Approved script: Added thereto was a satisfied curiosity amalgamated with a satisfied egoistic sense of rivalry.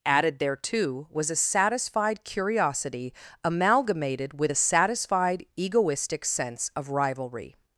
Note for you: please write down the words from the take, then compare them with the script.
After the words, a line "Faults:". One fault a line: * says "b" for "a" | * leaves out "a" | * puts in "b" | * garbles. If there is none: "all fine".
Added thereto was a satisfied curiosity amalgamated with a satisfied egoistic sense of rivalry.
Faults:
all fine